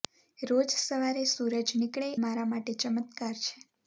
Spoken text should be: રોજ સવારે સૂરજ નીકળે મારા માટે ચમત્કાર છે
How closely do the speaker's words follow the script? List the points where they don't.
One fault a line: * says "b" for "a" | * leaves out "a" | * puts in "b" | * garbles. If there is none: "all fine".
all fine